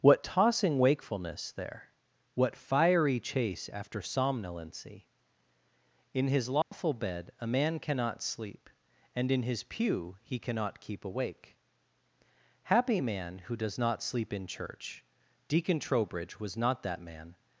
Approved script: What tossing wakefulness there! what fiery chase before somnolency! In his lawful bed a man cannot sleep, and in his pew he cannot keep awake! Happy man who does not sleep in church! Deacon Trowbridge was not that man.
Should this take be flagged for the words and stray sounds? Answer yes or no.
yes